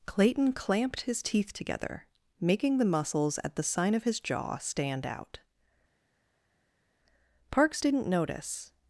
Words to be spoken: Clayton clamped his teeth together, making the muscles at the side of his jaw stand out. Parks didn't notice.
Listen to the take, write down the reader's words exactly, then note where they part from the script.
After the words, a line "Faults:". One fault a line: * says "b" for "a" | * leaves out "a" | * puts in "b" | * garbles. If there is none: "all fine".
Clayton clamped his teeth together, making the muscles at the sign of his jaw stand out. Parks didn't notice.
Faults:
* says "sign" for "side"